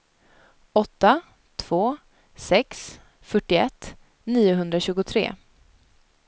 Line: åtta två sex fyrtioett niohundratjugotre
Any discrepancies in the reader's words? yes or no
no